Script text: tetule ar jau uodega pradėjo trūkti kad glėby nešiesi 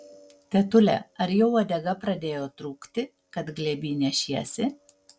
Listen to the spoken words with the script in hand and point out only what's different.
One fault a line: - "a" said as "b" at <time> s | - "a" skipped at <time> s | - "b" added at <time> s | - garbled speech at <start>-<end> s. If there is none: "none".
none